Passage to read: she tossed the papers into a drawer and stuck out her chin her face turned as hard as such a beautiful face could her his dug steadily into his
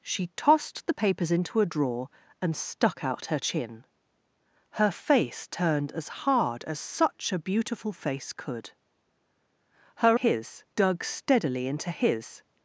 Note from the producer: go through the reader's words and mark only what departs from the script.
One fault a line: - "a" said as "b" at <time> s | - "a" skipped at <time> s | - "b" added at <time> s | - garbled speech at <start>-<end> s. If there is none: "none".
none